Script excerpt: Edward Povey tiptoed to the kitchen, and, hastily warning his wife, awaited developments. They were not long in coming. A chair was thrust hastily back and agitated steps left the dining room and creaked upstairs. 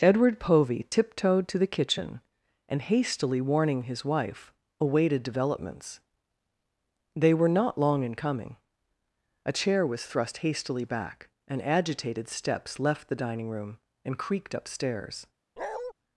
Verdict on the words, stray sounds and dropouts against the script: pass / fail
fail